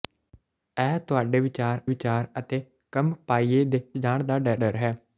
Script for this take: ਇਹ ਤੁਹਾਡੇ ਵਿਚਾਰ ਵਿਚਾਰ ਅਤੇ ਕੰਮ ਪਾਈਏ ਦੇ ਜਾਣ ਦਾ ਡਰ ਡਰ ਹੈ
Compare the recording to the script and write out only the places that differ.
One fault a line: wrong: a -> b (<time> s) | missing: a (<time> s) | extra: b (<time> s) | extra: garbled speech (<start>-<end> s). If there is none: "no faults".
no faults